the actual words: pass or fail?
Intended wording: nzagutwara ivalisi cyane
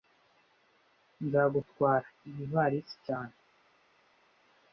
fail